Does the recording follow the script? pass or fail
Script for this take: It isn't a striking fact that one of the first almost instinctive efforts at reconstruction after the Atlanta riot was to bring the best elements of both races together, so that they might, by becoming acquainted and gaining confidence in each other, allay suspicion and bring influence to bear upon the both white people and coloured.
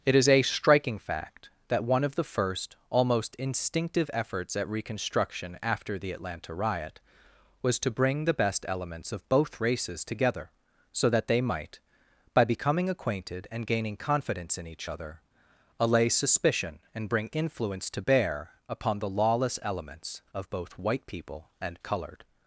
fail